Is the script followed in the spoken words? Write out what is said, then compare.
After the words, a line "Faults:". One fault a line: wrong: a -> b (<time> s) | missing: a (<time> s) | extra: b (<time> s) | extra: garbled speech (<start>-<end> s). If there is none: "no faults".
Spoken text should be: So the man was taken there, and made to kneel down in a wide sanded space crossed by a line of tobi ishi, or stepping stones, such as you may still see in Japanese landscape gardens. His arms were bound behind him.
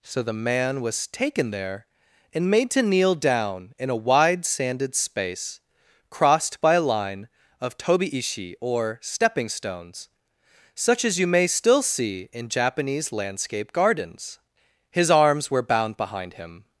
So the man was taken there, and made to kneel down in a wide sanded space crossed by a line of tobi ishi, or stepping stones, such as you may still see in Japanese landscape gardens. His arms were bound behind him.
Faults:
no faults